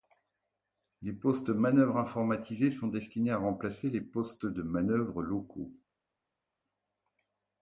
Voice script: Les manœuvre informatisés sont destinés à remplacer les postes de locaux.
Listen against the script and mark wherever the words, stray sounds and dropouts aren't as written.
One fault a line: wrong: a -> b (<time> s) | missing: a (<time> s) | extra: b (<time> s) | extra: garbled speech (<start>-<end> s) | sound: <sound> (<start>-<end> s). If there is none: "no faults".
extra: postes (1.1 s)
extra: manœuvre (4.6 s)